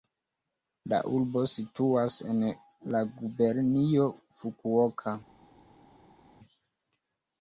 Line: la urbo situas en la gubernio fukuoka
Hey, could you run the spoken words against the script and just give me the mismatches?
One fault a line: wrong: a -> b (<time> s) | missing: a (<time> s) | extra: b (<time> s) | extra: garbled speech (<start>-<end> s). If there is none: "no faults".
no faults